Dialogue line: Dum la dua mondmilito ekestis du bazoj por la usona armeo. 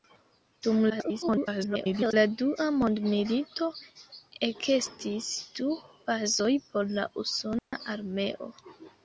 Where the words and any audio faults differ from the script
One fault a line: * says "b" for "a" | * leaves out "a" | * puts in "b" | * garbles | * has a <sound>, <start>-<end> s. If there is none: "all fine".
* garbles
* has a dropout, 7.6-7.7 s